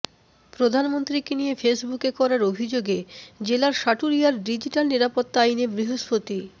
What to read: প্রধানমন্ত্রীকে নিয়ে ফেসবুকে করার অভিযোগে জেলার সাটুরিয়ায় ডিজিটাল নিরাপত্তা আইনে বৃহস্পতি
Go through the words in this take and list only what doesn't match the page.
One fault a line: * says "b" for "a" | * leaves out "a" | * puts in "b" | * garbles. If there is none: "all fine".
all fine